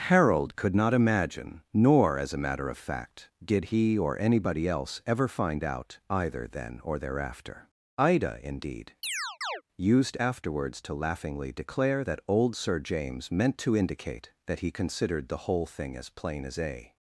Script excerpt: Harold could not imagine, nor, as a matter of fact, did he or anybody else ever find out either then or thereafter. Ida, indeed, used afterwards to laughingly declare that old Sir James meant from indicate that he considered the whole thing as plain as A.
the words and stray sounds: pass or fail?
fail